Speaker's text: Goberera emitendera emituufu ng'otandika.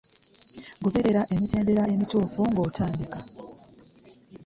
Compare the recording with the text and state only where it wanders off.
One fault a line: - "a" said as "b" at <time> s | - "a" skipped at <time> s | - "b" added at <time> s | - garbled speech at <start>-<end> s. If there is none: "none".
none